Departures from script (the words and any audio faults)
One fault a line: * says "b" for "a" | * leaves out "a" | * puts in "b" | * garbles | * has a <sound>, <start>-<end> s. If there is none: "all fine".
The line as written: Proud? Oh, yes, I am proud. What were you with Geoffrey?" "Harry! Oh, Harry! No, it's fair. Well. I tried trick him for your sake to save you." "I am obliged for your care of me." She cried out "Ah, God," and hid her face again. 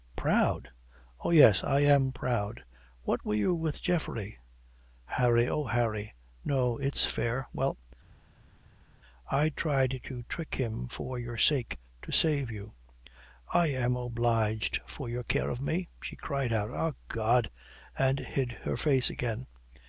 * puts in "to"